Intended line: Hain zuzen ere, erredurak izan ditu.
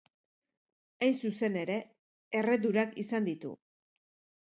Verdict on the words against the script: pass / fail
pass